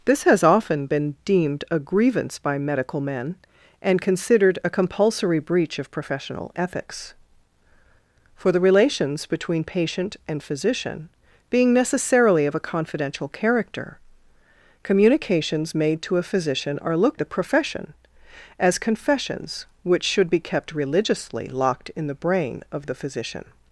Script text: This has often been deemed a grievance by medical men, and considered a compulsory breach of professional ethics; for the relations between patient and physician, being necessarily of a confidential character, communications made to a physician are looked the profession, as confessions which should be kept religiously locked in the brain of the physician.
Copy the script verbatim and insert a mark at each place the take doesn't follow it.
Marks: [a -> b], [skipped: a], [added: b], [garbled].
This has often been deemed a grievance by medical men, and considered a compulsory breach of professional ethics; for the relations between patient and physician, being necessarily of a confidential character, communications made to a physician are looked the profession, as confessions which should be kept religiously locked in the brain of the physician.